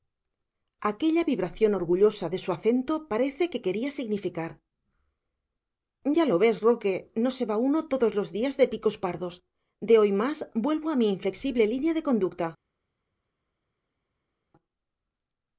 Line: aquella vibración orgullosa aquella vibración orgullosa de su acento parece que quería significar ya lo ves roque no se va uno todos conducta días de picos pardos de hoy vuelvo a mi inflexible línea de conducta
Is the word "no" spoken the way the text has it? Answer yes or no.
yes